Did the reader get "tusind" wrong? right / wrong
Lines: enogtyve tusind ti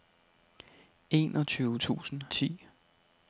right